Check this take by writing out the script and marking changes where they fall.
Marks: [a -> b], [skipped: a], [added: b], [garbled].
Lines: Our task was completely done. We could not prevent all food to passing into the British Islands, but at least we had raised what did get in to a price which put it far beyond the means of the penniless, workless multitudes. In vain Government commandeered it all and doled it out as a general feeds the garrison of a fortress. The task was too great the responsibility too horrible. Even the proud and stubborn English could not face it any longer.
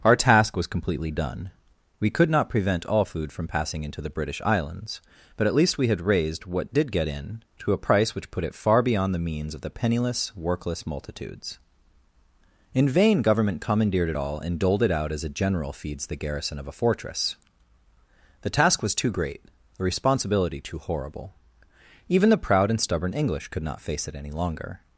Our task was completely done. We could not prevent all food [to -> from] passing into the British Islands, but at least we had raised what did get in to a price which put it far beyond the means of the penniless, workless multitudes. In vain Government commandeered it all and doled it out as a general feeds the garrison of a fortress. The task was too great the responsibility too horrible. Even the proud and stubborn English could not face it any longer.